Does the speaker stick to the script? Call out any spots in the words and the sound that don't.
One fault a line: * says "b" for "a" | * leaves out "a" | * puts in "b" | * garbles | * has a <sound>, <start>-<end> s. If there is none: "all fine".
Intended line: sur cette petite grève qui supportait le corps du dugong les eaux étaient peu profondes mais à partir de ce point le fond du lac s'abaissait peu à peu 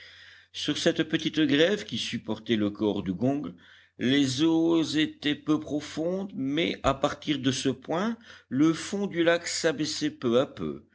* leaves out "du"